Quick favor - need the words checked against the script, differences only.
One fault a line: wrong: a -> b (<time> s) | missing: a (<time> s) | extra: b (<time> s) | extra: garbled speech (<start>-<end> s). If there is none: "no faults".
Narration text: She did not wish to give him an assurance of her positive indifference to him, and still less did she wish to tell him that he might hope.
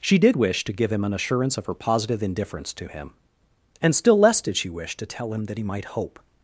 missing: not (0.3 s)